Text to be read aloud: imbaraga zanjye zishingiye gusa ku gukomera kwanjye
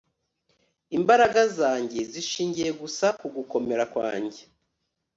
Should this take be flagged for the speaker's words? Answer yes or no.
no